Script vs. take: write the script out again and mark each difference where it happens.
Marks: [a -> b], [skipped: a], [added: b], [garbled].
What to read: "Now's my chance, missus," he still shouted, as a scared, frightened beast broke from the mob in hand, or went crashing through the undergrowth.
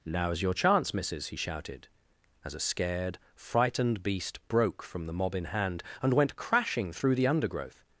"Now's [my -> your] chance, missus," he [skipped: still] shouted, as a scared, frightened beast broke from the mob in hand, [or -> and] went crashing through the undergrowth.